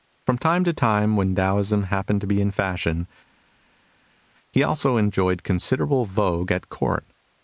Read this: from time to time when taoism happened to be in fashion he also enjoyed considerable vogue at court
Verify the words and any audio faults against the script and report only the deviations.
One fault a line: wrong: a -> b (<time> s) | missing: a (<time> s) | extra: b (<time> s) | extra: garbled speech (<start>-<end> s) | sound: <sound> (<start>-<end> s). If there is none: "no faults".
no faults